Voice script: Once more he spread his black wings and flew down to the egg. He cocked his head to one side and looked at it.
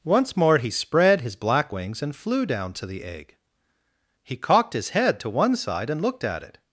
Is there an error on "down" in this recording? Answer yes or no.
no